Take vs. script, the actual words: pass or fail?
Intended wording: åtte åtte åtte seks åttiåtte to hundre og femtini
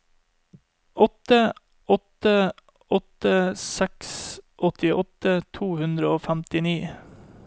pass